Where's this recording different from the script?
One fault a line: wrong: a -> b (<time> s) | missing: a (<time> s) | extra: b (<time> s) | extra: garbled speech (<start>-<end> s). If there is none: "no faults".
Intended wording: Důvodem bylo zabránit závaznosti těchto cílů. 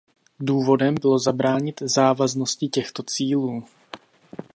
no faults